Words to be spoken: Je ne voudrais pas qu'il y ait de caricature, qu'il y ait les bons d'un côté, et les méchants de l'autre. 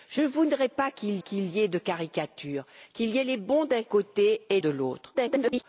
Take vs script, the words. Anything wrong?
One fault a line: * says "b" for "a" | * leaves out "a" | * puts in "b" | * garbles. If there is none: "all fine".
* puts in "qu'il"
* leaves out "les méchants"
* garbles